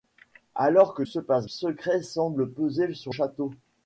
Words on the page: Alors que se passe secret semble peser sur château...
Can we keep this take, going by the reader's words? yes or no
yes